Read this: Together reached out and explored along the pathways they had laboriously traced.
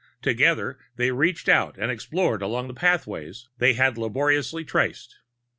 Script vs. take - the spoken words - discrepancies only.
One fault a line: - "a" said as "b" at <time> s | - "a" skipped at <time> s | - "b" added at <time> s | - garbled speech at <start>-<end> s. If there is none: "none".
- "they" added at 0.9 s